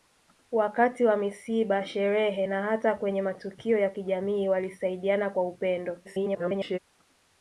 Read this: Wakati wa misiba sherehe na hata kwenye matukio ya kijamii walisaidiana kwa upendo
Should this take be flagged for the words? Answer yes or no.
yes